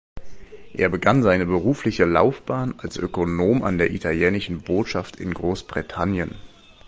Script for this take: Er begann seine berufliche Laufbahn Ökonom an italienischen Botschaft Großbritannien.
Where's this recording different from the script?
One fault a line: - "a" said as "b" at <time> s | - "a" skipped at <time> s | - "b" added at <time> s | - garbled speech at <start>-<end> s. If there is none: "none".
- "als" added at 2.8 s
- "der" added at 3.8 s
- "in" added at 5.2 s